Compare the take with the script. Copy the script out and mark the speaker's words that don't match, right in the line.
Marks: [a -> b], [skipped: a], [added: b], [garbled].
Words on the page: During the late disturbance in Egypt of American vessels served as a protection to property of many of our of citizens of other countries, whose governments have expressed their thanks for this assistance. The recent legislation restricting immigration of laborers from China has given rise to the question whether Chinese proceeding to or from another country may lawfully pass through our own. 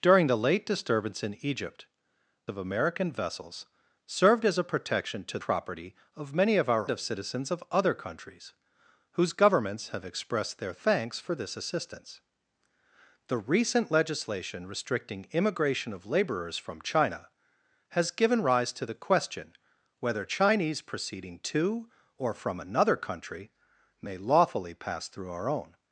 During the late disturbance in Egypt of American vessels served as a protection to property of many of our of citizens of other countries, whose governments have expressed their thanks for this assistance. The recent legislation restricting immigration of laborers from China has given rise to the question whether Chinese proceeding to or from another country may lawfully pass through our own.